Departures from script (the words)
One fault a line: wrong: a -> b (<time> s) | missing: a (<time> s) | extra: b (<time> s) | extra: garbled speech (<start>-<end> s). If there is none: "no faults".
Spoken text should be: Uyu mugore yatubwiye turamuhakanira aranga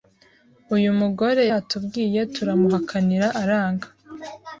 no faults